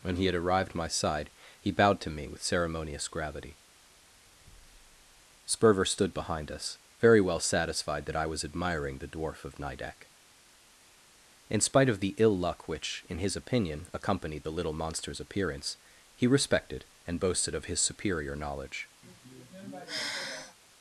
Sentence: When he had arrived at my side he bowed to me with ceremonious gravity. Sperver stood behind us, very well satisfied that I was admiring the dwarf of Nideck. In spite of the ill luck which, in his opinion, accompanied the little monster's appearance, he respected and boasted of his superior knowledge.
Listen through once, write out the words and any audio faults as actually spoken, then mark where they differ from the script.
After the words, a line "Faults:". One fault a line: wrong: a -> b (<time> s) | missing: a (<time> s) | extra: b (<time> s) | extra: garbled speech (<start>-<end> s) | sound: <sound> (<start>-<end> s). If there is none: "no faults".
When he had arrived my side he bowed to me with ceremonious gravity. Sperver stood behind us, very well satisfied that I was admiring the dwarf of Nideck. In spite of the ill luck which, in his opinion, accompanied the little monster's appearance, he respected and boasted of his superior knowledge.
Faults:
missing: at (0.7 s)
sound: sigh (19.0-20.6 s)